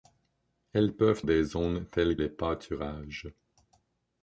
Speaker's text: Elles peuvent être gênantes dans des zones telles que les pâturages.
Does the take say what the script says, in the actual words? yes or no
no